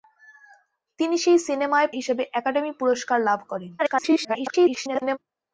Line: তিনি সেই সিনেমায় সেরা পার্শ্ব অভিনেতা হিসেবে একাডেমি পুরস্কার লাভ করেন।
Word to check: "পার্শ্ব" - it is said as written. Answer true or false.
false